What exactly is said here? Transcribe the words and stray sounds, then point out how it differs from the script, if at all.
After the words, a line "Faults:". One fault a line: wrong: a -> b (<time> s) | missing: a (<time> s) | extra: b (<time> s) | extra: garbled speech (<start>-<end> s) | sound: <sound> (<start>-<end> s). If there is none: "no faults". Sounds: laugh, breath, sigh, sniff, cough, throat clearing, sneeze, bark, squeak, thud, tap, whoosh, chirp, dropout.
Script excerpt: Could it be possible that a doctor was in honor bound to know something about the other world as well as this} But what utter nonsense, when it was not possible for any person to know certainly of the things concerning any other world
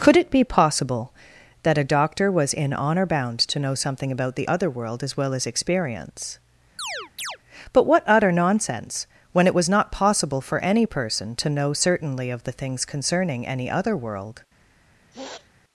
Could it be possible that a doctor was in honor bound to know something about the other world as well as experience} But what utter nonsense, when it was not possible for any person to know certainly of the things concerning any other world
Faults:
wrong: this -> experience (5.5 s)
sound: chirp (6.8-7.4 s)
sound: sniff (15.1-15.5 s)